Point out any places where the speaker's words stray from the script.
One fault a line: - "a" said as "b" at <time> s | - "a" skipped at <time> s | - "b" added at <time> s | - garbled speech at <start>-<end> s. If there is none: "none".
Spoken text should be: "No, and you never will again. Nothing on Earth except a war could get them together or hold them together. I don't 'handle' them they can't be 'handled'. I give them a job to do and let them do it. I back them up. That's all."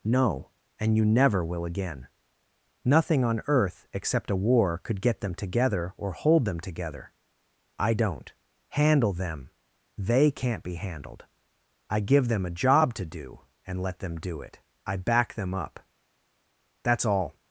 none